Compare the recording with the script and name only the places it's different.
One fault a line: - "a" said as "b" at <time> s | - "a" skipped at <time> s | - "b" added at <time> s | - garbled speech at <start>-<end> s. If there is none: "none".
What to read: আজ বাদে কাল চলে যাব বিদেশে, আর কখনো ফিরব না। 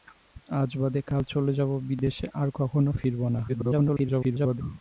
- garbled speech at 3.5-4.6 s